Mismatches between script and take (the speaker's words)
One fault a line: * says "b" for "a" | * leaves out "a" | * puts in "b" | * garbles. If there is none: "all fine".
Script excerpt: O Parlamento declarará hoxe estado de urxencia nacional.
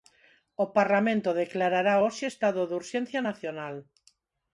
all fine